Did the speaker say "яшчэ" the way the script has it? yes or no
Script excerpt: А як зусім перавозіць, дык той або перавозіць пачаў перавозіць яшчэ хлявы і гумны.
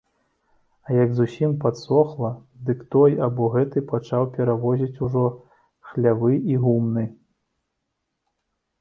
no